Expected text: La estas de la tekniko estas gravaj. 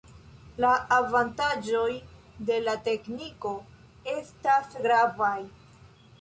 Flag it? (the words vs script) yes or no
yes